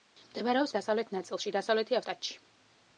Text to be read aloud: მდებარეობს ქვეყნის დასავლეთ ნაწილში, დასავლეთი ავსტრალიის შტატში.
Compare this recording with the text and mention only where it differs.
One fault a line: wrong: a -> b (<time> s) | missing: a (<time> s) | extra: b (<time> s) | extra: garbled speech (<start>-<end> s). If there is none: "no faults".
missing: ქვეყნის (0.7 s)
missing: ავსტრალიის (2.0 s)